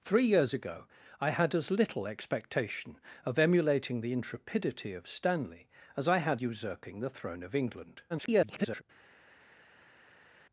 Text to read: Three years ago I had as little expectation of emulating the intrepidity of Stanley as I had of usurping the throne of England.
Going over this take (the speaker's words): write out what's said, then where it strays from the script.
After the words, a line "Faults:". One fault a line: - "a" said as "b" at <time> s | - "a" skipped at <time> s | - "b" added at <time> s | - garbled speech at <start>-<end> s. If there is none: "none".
Three years ago I had as little expectation of emulating the intrepidity of Stanley as I had usurping the throne of England. [garbled]
Faults:
- "of" skipped at 6.4 s
- garbled speech at 8.1-8.8 s